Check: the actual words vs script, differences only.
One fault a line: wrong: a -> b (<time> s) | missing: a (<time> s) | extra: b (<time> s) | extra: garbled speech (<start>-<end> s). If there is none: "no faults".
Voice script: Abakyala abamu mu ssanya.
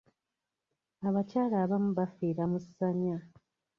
extra: bafiira (2.0 s)